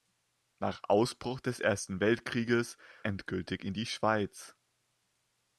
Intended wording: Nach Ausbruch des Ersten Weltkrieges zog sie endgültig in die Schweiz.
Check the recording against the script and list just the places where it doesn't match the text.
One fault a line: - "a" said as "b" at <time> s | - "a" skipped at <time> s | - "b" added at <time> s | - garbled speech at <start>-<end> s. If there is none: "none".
- "zog sie" skipped at 2.8 s